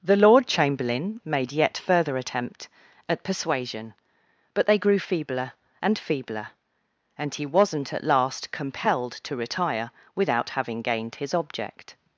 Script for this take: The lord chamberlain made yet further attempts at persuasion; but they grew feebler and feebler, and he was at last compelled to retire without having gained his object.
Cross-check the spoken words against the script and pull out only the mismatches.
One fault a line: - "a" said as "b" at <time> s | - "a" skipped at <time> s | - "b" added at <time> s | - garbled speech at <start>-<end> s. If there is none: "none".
- "attempts" said as "attempt" at 2.2 s
- "was" said as "wasn't" at 7.4 s